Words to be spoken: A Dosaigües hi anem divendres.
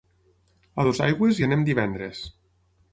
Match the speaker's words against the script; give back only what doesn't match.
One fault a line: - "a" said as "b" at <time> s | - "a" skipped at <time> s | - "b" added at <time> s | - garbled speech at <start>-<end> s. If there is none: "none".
none